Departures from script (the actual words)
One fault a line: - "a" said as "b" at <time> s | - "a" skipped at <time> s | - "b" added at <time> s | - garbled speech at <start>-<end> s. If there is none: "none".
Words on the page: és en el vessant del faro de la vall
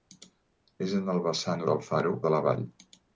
none